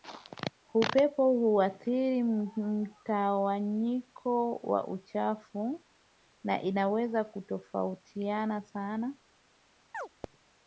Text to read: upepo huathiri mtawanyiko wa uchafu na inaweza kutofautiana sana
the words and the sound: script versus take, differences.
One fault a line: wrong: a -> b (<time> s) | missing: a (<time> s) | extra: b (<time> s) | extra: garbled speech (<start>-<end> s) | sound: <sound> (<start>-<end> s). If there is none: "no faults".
sound: chirp (9.9-10.1 s)